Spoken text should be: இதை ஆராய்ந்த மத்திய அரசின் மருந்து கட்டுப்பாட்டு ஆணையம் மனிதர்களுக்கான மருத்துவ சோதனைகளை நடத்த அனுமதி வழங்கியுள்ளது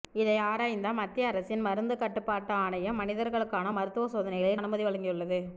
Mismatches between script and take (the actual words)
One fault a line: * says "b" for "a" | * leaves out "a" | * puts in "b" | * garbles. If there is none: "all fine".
* leaves out "நடத்த"